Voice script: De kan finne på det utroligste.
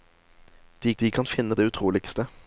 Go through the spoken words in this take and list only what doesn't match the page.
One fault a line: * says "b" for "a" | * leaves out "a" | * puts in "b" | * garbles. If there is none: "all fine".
* puts in "de"
* leaves out "på"